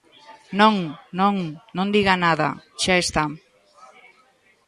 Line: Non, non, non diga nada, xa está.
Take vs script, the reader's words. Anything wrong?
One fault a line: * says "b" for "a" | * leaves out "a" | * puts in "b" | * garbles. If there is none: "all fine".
all fine